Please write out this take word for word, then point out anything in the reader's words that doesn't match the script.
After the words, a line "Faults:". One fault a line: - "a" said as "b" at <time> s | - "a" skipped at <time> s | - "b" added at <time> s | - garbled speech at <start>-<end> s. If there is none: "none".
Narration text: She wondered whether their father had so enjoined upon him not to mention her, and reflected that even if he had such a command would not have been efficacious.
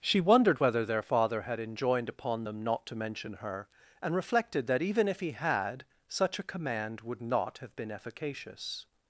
She wondered whether their father had enjoined upon them not to mention her, and reflected that even if he had such a command would not have been efficacious.
Faults:
- "so" skipped at 1.6 s
- "him" said as "them" at 2.4 s